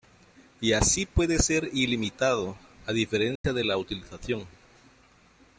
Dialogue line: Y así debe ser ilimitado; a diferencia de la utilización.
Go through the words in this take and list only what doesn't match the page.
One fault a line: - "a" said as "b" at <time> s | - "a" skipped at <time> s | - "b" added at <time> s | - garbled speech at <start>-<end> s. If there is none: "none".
- "debe" said as "puede" at 1.1 s